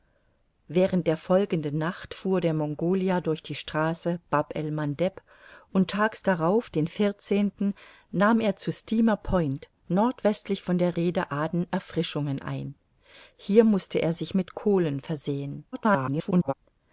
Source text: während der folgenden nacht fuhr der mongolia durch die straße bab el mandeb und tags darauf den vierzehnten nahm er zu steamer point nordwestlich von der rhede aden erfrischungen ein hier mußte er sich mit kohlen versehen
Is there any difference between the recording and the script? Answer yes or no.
yes